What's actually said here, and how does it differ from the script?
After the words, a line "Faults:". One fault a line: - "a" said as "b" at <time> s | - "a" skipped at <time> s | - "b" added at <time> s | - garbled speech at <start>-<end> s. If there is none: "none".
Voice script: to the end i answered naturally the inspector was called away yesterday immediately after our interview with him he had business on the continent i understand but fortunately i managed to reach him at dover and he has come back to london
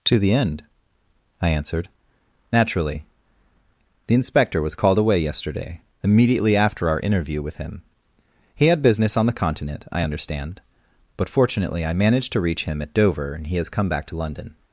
to the end i answered naturally the inspector was called away yesterday immediately after our interview with him he had business on the continent i understand but fortunately i managed to reach him at dover and he has come back to london
Faults:
none